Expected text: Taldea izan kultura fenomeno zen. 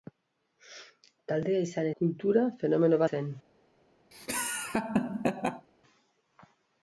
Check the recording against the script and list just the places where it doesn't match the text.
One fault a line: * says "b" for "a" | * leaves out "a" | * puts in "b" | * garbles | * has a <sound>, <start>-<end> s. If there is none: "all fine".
* has a laugh, 4.1-5.7 s